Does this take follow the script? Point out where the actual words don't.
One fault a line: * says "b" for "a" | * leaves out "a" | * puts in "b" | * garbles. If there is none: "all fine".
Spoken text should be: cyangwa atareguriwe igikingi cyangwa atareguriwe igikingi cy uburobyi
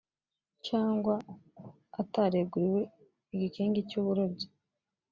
* leaves out "cyangwa atareguriwe igikingi"